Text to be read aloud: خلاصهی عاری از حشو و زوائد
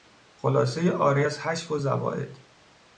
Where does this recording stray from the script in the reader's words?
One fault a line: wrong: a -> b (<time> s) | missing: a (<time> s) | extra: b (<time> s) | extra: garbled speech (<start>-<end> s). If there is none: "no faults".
no faults